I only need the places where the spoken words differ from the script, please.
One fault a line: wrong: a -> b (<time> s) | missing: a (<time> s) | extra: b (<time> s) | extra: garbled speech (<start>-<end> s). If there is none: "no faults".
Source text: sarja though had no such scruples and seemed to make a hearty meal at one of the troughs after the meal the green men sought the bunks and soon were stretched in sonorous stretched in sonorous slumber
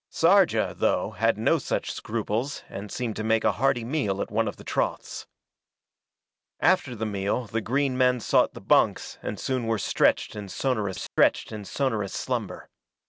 no faults